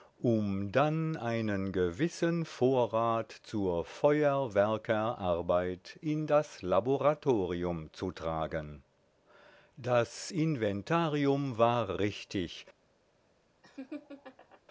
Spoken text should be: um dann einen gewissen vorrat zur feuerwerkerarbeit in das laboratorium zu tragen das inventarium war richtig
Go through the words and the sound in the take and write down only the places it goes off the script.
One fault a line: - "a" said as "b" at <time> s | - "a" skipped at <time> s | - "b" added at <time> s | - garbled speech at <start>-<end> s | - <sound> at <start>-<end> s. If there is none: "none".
- laugh at 13.6-14.6 s